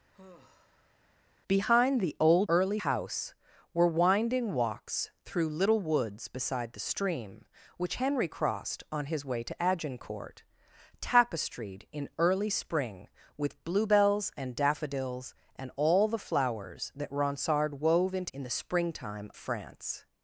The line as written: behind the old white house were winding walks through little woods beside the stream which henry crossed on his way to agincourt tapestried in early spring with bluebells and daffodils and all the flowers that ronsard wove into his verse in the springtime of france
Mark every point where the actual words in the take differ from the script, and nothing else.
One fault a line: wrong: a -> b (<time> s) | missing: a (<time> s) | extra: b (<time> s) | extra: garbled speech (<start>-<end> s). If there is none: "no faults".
wrong: white -> early (2.5 s)
missing: his verse (18.3 s)
missing: of (19.3 s)